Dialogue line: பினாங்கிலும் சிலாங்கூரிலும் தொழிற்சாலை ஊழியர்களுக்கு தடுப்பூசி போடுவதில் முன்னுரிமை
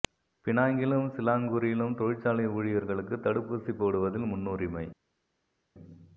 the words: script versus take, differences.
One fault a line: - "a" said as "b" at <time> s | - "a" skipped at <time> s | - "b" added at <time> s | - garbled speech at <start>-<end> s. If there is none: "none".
none